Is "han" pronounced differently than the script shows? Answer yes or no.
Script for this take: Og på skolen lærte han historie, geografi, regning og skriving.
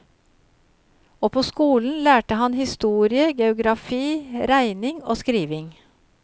no